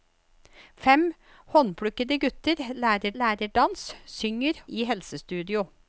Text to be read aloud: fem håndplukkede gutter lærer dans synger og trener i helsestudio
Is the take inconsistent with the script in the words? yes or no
yes